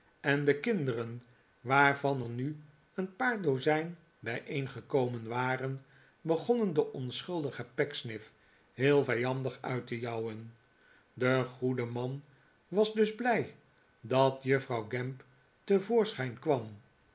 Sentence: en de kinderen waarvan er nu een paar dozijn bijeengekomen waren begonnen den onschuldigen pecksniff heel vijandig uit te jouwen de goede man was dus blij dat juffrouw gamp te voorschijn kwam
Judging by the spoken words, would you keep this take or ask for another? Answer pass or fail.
pass